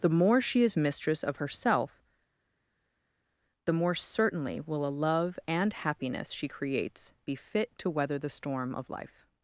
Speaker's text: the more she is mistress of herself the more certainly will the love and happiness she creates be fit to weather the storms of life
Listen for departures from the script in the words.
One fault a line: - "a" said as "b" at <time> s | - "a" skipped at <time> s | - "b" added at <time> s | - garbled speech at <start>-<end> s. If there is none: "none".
- "the" said as "a" at 4.9 s
- "storms" said as "storm" at 8.3 s